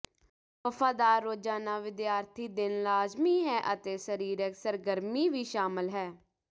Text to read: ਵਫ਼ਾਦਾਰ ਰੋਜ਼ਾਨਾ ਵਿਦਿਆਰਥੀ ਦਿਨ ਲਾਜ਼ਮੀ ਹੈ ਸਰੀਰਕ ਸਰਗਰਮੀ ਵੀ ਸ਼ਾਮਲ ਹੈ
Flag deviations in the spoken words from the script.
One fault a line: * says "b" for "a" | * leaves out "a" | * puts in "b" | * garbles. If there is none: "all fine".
* puts in "ਅਤੇ"